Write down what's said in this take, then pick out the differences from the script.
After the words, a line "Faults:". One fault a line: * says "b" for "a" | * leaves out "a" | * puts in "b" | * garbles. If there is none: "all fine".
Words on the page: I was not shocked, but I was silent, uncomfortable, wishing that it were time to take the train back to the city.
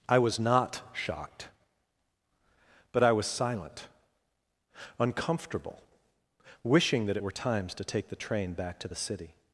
I was not shocked, but I was silent, uncomfortable, wishing that it were times to take the train back to the city.
Faults:
* says "times" for "time"